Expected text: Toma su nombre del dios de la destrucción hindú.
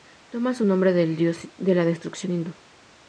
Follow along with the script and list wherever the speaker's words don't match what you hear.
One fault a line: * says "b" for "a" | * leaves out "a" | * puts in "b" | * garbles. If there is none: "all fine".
all fine